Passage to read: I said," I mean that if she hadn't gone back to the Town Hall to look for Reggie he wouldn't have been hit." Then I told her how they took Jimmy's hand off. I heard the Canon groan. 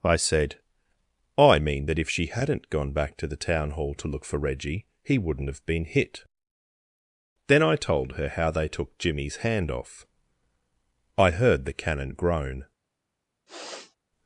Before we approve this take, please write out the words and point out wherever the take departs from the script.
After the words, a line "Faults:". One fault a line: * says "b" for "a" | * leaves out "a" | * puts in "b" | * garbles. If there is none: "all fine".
I said," I mean that if she hadn't gone back to the Town Hall to look for Reggie he wouldn't have been hit." Then I told her how they took Jimmy's hand off. I heard the Canon groan.
Faults:
all fine